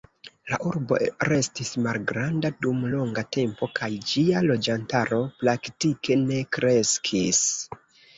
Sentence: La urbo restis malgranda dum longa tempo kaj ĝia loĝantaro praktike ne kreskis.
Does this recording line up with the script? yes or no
yes